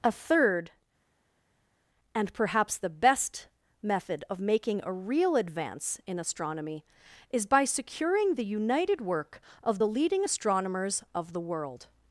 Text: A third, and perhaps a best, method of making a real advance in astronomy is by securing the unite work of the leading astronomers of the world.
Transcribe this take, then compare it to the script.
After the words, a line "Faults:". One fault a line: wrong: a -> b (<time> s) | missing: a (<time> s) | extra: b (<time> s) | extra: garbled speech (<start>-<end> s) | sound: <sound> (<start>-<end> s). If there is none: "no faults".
A third, and perhaps the best, method of making a real advance in astronomy is by securing the united work of the leading astronomers of the world.
Faults:
wrong: a -> the (2.8 s)
wrong: unite -> united (8.4 s)